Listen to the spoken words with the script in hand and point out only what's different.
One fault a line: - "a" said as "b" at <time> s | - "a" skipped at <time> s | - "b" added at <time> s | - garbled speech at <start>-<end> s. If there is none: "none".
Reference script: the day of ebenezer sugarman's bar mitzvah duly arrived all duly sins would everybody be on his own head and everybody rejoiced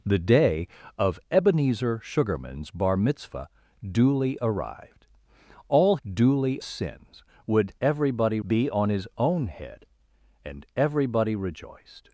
none